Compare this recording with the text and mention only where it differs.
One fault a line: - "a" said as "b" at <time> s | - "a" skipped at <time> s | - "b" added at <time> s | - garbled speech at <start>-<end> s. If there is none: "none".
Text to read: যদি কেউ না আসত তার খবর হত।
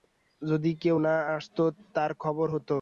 none